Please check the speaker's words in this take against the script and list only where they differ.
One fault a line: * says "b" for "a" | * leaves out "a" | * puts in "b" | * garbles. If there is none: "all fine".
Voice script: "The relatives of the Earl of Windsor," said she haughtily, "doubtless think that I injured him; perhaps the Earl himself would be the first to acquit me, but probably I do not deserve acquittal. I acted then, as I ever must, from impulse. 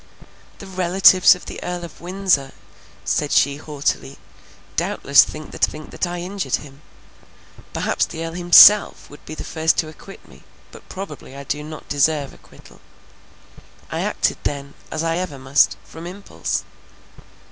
* puts in "think that"